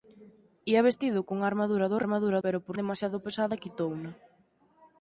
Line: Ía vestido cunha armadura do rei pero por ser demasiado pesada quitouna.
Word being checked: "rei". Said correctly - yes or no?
no